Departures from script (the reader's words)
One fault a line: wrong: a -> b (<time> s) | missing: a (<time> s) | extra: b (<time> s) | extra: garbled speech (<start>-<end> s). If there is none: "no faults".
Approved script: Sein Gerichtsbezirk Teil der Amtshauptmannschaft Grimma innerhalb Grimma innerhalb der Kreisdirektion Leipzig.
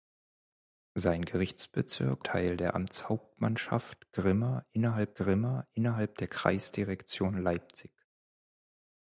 no faults